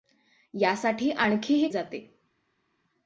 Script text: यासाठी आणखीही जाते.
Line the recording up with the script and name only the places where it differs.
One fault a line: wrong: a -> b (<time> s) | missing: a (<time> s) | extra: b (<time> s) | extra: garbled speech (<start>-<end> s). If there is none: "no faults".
no faults